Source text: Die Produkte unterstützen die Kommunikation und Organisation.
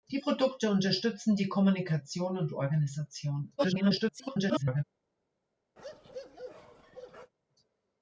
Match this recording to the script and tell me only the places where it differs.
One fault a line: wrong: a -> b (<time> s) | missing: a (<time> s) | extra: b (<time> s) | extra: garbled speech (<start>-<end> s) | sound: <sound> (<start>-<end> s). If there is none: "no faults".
extra: garbled speech (3.6-4.8 s)
sound: bark (5.8-7.3 s)